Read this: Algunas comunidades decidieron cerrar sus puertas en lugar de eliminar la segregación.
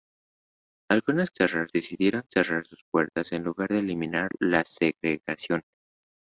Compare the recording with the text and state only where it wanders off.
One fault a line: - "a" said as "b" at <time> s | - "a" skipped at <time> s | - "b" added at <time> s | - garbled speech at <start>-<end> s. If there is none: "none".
- "comunidades" said as "cerrar" at 1.3 s